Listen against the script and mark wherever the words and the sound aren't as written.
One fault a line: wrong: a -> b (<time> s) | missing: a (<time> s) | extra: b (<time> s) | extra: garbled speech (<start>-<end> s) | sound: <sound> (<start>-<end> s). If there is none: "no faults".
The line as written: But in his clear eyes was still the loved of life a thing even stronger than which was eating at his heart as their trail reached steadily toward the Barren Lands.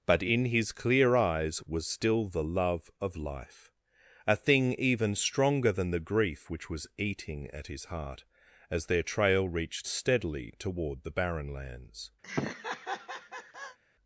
wrong: loved -> love (2.4 s)
extra: the grief (5.9 s)
sound: laugh (12.2-13.8 s)